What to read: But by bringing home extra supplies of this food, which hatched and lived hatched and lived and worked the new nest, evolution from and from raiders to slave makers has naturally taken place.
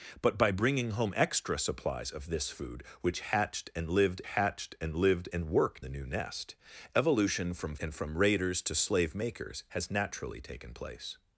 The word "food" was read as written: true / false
true